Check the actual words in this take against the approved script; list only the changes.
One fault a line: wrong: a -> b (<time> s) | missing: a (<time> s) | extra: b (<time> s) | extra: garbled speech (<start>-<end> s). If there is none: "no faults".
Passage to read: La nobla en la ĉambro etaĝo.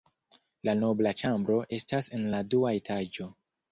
extra: ĉambro estas (1.2 s)
wrong: ĉambro -> dua (2.6 s)